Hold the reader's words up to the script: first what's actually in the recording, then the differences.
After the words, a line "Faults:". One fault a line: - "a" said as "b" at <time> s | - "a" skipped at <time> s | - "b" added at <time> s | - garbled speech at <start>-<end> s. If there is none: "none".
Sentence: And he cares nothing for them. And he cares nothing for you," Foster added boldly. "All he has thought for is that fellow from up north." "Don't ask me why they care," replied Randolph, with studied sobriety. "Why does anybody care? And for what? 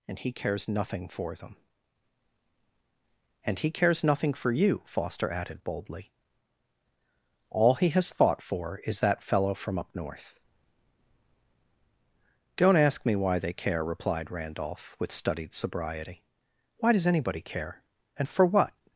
And he cares nothing for them. And he cares nothing for you," Foster added boldly. "All he has thought for is that fellow from up north." "Don't ask me why they care," replied Randolph, with studied sobriety. "Why does anybody care? And for what?
Faults:
none